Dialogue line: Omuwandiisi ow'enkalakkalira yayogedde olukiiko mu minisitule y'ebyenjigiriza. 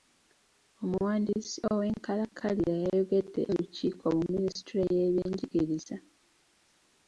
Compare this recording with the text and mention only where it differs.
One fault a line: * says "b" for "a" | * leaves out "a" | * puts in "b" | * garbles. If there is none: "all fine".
all fine